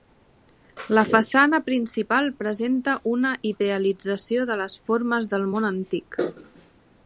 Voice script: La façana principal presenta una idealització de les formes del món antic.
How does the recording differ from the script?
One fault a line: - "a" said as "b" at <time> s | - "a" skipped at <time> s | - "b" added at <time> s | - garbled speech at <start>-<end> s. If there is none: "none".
none